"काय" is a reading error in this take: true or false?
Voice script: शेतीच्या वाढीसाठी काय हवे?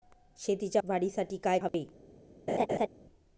false